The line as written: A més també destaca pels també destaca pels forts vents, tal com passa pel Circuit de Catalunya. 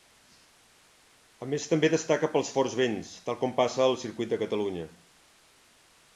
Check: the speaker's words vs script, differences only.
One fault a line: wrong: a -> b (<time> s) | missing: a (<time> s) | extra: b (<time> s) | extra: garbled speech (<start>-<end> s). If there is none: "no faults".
missing: també destaca pels (2.5 s)
wrong: pel -> al (3.9 s)